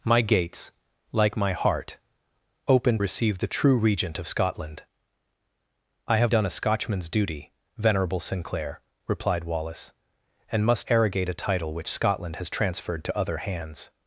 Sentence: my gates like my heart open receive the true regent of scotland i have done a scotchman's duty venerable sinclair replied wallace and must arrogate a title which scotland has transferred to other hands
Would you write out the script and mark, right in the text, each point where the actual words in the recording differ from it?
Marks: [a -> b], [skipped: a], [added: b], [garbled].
my gates like my heart open receive the true regent of scotland i have done a scotchman's duty venerable sinclair replied wallace and must arrogate a title which scotland has transferred to other hands